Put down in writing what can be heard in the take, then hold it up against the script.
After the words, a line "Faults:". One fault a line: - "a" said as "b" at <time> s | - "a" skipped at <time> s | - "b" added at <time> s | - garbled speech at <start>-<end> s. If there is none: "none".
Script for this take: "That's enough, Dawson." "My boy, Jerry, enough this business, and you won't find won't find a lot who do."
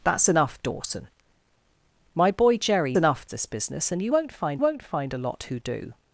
"That's enough, Dawson." "My boy, Jerry, enough this business, and you won't find won't find a lot who do."
Faults:
none